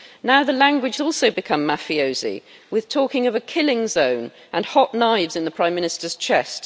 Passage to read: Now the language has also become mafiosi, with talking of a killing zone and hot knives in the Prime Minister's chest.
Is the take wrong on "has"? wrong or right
wrong